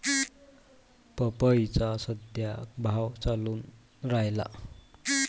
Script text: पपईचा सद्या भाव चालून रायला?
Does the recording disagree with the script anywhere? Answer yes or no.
no